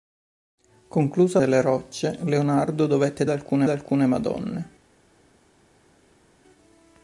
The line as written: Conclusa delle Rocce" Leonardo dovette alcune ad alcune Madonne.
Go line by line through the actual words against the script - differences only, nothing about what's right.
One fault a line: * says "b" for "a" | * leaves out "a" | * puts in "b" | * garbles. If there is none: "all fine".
all fine